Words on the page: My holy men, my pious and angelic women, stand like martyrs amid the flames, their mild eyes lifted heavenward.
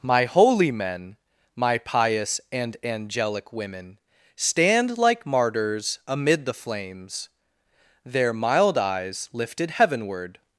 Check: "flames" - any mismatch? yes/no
no